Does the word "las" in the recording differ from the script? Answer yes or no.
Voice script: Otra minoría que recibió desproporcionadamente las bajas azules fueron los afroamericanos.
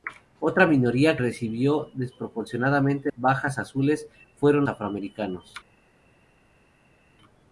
yes